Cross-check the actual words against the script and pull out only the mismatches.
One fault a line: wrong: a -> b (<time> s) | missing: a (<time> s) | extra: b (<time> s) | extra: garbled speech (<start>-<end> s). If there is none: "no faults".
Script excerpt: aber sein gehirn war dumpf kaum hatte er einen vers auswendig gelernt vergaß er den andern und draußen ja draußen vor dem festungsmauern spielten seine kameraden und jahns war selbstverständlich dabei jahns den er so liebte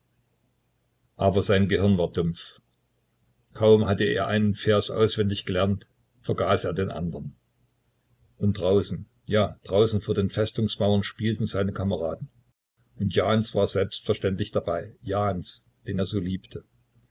wrong: dem -> den (10.1 s)